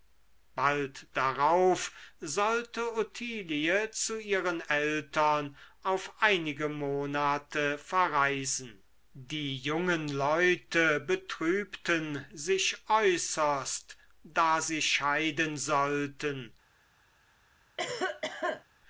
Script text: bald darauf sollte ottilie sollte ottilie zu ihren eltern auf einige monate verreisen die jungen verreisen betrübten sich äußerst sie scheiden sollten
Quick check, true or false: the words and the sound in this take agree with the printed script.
false